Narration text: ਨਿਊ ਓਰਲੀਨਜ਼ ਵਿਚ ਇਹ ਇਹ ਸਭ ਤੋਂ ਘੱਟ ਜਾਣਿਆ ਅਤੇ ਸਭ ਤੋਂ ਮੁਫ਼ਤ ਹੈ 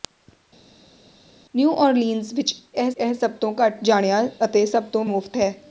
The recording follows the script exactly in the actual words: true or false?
true